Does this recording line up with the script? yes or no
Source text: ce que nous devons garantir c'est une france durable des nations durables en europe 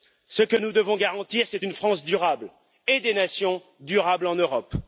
no